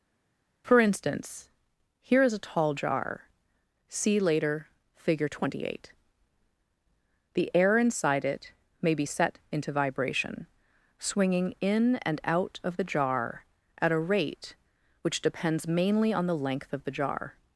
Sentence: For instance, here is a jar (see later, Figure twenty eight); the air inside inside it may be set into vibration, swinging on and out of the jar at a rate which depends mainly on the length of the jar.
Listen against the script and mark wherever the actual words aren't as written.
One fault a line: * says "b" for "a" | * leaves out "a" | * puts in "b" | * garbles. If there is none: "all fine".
* puts in "tall"
* leaves out "inside"
* says "in" for "on"